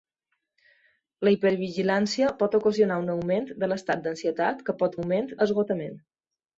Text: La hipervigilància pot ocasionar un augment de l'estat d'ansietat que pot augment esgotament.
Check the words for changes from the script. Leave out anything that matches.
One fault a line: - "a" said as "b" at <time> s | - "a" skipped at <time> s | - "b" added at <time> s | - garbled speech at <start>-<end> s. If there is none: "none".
none